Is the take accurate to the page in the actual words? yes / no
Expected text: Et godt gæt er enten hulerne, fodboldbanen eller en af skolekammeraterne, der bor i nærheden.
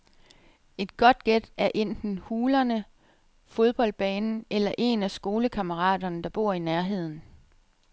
yes